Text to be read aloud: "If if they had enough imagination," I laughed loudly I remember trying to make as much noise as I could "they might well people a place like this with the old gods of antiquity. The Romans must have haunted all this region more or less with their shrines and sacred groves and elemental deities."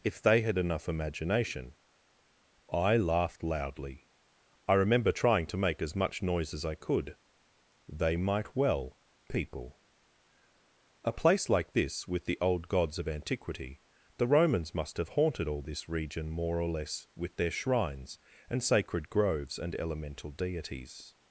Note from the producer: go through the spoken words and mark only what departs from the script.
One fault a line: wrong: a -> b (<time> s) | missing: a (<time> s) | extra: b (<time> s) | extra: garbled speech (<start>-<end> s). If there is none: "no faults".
missing: if (0.2 s)